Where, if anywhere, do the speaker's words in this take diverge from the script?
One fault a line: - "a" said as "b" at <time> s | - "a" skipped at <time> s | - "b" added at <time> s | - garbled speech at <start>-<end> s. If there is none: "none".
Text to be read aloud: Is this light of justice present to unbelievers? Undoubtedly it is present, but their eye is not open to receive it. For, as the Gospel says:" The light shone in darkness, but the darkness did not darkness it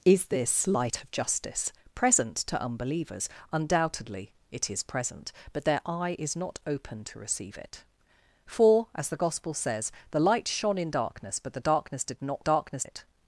none